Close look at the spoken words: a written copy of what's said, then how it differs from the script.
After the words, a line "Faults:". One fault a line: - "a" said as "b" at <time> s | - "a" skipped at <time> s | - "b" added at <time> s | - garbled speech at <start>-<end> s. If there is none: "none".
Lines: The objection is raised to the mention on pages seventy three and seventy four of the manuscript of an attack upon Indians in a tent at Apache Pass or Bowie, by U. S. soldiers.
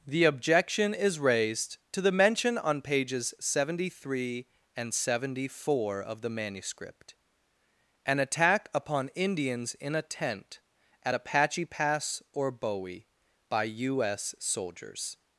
The objection is raised to the mention on pages seventy three and seventy four of the manuscript an attack upon Indians in a tent at Apache Pass or Bowie, by U. S. soldiers.
Faults:
- "of" skipped at 7.2 s